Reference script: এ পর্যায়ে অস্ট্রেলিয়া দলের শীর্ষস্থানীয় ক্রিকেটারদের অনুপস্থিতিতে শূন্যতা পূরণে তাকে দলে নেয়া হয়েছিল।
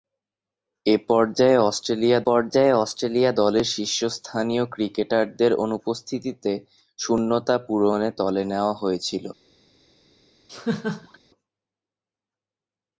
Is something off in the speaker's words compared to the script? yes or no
yes